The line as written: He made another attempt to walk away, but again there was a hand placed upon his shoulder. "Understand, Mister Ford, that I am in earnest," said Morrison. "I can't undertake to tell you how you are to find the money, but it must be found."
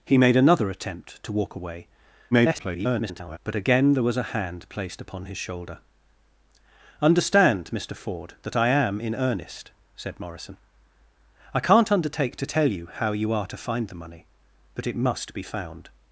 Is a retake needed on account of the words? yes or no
yes